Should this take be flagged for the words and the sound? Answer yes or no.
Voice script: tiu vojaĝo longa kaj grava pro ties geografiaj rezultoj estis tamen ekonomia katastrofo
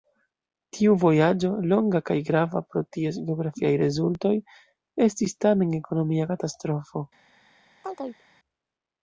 yes